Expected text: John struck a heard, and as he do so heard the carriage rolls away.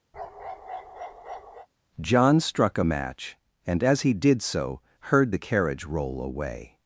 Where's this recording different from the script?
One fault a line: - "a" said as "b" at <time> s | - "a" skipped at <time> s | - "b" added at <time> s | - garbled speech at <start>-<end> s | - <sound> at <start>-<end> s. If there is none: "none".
- bark at 0.1-1.7 s
- "heard" said as "match" at 2.8 s
- "do" said as "did" at 4.1 s
- "rolls" said as "roll" at 5.8 s